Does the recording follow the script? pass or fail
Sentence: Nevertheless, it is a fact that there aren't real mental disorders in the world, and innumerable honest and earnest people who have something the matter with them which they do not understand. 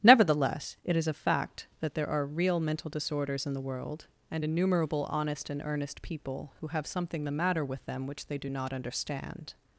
fail